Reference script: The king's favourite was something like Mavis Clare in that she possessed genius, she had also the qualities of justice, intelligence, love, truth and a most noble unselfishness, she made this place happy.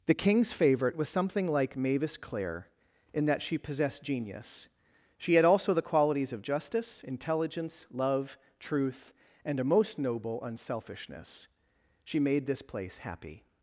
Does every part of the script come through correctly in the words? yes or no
yes